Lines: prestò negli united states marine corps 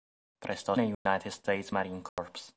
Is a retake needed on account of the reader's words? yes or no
no